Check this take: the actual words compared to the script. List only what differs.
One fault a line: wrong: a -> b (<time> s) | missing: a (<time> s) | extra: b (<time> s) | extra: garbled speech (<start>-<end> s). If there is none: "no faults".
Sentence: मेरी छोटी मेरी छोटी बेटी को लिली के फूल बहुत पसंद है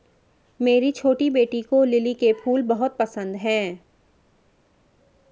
missing: मेरी छोटी (1.3 s)